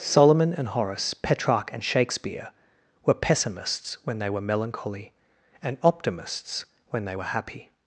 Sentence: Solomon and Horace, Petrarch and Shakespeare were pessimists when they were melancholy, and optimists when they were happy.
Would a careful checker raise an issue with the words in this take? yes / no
no